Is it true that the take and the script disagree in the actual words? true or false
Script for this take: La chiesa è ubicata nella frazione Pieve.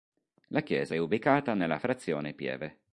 false